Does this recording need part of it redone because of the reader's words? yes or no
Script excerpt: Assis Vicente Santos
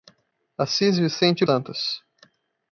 no